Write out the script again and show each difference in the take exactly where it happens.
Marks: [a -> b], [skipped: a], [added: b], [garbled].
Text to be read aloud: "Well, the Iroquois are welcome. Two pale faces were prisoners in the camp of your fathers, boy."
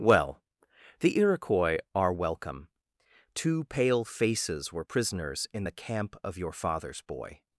"Well, the Iroquois are welcome. Two pale faces were prisoners in the camp of your fathers, boy."